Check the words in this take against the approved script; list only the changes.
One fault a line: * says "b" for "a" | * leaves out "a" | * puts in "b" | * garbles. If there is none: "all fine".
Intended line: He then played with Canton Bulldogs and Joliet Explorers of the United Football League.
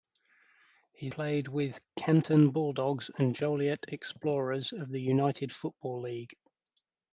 * leaves out "then"